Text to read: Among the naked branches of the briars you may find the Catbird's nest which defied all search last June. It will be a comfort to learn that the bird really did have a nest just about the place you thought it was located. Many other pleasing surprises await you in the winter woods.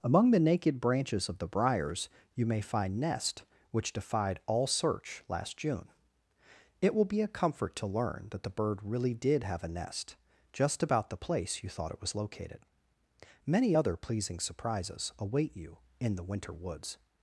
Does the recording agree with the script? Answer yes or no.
no